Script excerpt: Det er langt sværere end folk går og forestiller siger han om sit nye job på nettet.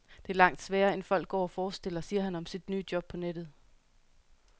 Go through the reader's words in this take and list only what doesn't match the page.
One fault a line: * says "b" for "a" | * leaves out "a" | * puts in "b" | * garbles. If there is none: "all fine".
all fine